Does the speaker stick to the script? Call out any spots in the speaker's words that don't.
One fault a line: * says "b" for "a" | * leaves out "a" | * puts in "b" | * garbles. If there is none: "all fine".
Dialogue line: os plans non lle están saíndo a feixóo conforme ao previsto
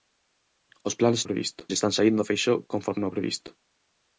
* says "previsto" for "non"